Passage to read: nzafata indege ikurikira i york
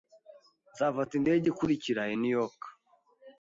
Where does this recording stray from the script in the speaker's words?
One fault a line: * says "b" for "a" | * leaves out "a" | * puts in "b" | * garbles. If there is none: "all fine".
* puts in "new"